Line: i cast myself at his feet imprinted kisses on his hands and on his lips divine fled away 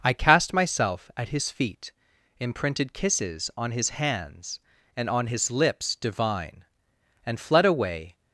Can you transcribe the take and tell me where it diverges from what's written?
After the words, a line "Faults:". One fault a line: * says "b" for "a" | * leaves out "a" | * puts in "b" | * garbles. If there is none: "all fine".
i cast myself at his feet imprinted kisses on his hands and on his lips divine and fled away
Faults:
* puts in "and"